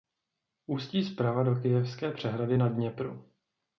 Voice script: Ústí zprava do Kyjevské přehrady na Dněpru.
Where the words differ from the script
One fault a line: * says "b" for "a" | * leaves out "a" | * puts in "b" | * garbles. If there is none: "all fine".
all fine